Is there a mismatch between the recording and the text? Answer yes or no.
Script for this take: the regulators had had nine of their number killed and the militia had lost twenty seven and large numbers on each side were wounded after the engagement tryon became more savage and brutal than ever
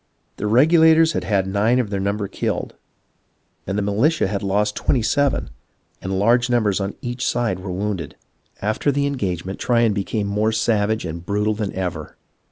no